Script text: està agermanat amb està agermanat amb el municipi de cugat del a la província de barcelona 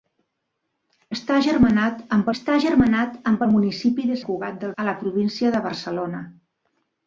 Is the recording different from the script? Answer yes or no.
no